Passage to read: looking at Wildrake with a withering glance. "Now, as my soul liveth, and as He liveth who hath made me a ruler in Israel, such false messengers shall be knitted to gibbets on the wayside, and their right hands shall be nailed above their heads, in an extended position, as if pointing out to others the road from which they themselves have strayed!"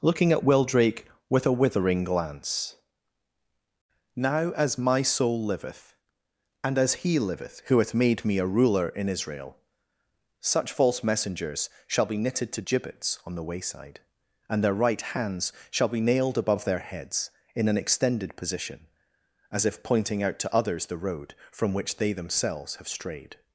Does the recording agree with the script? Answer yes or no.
yes